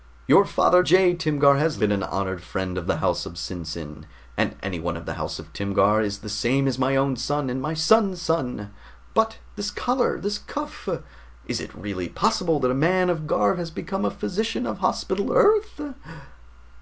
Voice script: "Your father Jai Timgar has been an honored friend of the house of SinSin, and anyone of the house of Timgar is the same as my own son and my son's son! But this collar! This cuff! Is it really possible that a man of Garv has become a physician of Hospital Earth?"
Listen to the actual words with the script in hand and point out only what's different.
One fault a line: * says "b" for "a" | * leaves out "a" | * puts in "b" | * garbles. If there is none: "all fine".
all fine